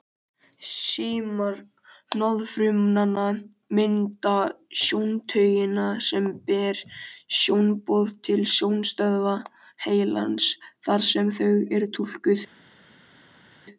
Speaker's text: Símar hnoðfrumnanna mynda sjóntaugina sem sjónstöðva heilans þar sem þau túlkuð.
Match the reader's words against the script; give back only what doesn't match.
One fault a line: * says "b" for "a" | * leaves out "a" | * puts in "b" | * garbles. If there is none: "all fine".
* puts in "ber sjónboð til"
* puts in "eru"